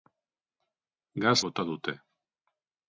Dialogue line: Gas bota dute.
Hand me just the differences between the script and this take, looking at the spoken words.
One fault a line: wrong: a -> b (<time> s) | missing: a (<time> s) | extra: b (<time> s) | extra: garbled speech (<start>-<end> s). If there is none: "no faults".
no faults